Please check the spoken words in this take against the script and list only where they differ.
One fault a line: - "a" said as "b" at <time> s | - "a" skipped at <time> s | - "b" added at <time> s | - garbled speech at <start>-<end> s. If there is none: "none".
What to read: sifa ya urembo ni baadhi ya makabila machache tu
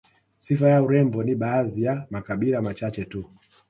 none